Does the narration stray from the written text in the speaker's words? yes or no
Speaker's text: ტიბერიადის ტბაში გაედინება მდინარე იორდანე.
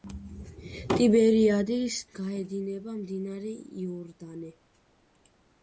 yes